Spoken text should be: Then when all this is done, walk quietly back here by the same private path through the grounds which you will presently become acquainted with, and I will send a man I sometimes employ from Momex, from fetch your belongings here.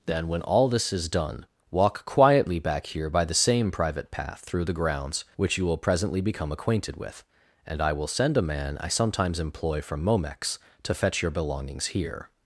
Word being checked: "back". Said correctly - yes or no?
yes